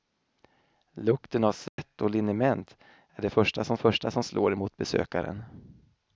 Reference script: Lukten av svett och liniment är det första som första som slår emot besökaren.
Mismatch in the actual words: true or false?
false